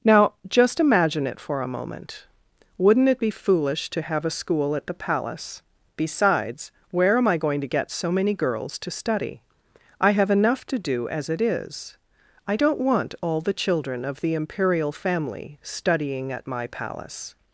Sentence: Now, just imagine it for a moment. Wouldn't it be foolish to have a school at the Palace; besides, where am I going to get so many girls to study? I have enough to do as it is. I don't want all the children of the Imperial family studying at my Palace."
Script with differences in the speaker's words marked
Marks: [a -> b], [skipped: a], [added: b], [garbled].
Now, just imagine it for a moment. Wouldn't it be foolish to have a school at the Palace; besides, where am I going to get so many girls to study? I have enough to do as it is. I don't want all the children of the Imperial family studying at my Palace."